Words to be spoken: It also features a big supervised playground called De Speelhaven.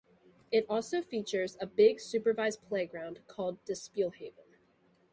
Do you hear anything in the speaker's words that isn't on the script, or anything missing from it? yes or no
no